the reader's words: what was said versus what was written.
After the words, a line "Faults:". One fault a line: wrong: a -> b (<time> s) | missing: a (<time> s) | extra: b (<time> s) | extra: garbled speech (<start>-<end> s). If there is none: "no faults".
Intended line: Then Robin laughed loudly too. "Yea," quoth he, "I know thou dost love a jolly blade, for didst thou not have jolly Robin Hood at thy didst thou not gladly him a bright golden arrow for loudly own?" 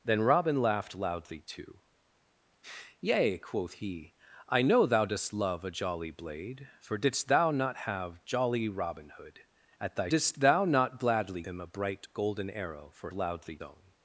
Then Robin laughed loudly too. "Yea," quoth he, "I know thou dost love a jolly blade, for didst thou not have jolly Robin Hood at thy didst thou not gladly him a bright golden arrow for loudly own?"
Faults:
no faults